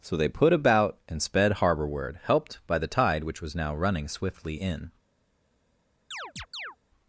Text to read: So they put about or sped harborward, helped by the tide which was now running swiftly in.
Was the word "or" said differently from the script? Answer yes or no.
yes